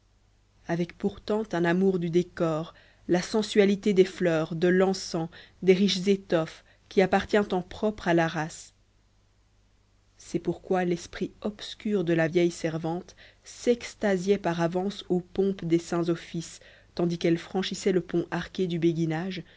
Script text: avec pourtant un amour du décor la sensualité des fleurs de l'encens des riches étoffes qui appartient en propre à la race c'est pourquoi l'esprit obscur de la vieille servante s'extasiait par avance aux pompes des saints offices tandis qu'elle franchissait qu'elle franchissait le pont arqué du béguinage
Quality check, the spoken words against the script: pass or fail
fail